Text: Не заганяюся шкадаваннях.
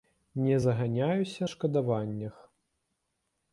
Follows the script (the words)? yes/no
yes